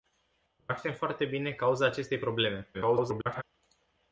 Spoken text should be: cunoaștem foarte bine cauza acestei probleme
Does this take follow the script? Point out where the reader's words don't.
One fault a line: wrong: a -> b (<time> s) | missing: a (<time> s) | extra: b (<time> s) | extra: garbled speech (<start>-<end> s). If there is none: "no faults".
extra: garbled speech (2.7-3.4 s)